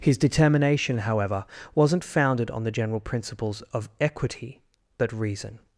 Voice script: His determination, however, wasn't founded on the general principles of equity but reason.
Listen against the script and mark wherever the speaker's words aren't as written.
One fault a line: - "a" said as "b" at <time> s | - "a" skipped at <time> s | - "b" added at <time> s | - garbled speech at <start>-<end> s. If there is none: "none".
none